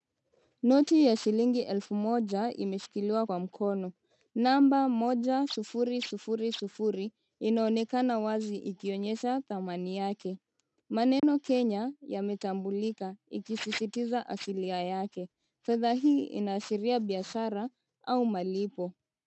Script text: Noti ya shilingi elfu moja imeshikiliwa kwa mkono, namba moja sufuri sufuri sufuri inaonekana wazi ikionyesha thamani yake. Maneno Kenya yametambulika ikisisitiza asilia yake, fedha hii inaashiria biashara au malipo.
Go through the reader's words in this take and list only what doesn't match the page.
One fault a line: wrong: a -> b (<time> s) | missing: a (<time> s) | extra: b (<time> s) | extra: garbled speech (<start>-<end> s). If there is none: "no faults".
no faults